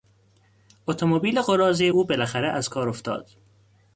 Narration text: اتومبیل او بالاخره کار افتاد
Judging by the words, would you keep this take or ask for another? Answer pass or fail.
fail